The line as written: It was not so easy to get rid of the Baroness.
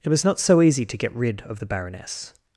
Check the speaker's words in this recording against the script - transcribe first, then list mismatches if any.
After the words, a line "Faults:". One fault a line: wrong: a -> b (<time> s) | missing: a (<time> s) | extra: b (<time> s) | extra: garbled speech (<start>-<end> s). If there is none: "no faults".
It was not so easy to get rid of the Baroness.
Faults:
no faults